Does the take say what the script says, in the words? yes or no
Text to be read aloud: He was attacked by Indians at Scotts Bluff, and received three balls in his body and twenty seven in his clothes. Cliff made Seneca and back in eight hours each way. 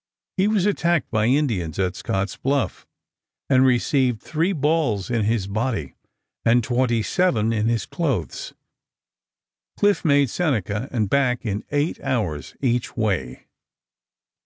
yes